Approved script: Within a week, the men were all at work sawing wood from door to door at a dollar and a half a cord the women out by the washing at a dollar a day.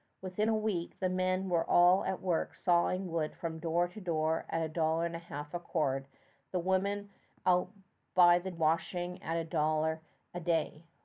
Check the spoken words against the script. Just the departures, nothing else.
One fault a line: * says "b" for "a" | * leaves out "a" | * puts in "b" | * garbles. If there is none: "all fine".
all fine